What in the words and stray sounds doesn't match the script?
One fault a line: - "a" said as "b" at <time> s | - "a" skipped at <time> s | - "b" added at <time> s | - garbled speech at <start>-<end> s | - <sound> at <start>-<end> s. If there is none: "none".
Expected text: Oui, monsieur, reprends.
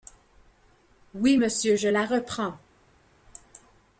- "je la" added at 1.7 s